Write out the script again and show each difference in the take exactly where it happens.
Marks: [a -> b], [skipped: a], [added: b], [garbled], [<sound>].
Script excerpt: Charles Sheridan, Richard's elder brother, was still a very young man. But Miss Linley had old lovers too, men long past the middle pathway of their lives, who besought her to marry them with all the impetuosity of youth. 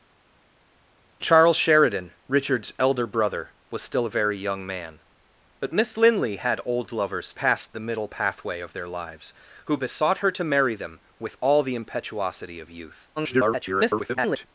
Charles Sheridan, Richard's elder brother, was still a very young man. But Miss Linley had old lovers [skipped: too, men long] past the middle pathway of their lives, who besought her to marry them with all the impetuosity of youth. [garbled]